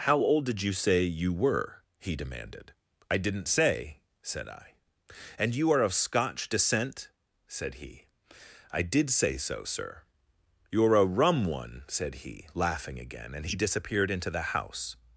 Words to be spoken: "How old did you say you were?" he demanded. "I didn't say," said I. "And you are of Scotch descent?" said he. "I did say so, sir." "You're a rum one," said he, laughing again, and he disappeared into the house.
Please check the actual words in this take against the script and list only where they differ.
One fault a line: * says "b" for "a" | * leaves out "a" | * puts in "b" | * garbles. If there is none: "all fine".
all fine